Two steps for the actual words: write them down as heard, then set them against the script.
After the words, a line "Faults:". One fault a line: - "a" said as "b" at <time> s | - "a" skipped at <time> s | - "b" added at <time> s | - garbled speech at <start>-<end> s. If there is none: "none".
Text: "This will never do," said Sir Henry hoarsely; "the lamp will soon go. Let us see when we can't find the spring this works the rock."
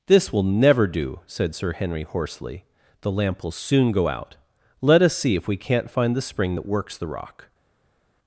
"This will never do," said Sir Henry hoarsely; "the lamp will soon go out. Let us see if we can't find the spring that works the rock."
Faults:
- "out" added at 4.1 s
- "when" said as "if" at 5.3 s
- "this" said as "that" at 6.5 s